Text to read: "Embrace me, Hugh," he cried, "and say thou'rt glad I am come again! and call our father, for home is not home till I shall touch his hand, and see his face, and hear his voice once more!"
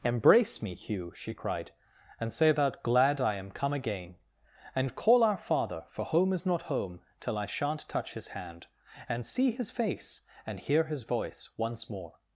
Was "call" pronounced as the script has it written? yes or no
yes